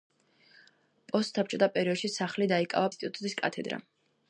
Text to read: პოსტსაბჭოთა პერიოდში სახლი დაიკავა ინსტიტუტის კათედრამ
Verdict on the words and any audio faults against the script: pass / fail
pass